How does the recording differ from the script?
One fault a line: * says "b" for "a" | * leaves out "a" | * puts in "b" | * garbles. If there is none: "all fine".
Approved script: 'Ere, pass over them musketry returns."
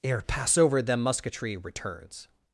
all fine